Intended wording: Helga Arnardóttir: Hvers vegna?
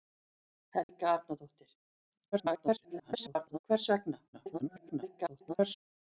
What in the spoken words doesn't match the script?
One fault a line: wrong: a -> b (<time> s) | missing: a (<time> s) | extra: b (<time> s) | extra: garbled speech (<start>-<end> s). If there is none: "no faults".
extra: garbled speech (2.3-3.6 s)
extra: garbled speech (4.3-5.8 s)